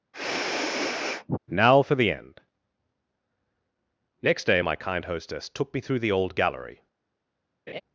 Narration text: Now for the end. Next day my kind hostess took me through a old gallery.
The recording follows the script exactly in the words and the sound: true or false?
false